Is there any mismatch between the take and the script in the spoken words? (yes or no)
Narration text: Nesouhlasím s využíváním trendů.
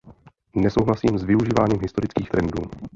yes